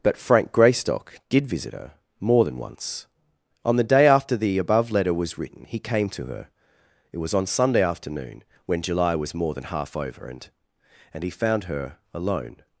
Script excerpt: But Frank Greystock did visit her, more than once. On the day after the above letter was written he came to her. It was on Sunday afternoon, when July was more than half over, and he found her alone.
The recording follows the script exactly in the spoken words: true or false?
false